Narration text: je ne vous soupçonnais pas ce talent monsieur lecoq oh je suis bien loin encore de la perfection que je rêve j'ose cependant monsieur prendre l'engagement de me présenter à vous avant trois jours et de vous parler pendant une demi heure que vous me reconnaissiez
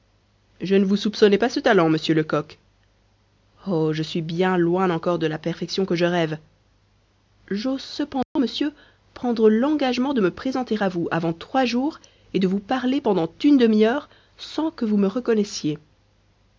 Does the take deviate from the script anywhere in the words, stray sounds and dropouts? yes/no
yes